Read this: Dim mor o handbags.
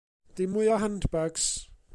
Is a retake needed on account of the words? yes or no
yes